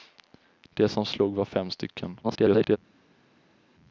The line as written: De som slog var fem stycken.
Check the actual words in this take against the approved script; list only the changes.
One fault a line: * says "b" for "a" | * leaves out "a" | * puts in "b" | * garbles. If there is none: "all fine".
* garbles